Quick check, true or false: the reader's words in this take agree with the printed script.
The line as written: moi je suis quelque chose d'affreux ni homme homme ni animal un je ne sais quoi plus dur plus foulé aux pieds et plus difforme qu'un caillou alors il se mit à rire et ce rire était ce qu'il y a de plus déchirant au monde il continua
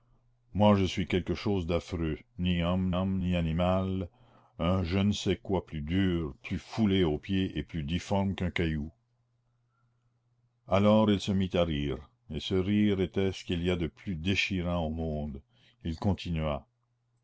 true